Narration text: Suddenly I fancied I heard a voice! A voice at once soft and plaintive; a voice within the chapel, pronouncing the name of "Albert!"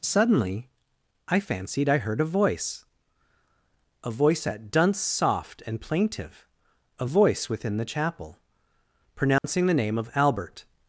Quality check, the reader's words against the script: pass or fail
fail